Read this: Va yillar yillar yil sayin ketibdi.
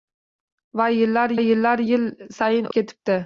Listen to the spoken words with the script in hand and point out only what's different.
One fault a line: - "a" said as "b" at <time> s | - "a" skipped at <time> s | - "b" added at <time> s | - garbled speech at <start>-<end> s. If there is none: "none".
none